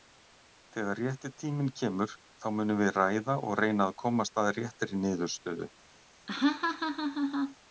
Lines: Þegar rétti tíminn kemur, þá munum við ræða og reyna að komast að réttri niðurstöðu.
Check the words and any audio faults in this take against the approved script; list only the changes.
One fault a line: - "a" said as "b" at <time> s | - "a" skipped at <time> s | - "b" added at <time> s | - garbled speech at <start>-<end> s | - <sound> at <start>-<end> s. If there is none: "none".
- laugh at 6.3-7.6 s